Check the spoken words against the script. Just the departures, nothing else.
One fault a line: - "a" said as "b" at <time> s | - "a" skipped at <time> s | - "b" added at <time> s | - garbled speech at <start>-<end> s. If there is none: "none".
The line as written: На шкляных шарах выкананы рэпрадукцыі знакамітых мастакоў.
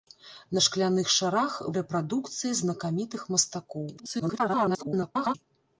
- "выкананы" skipped at 1.6 s
- garbled speech at 4.0-5.3 s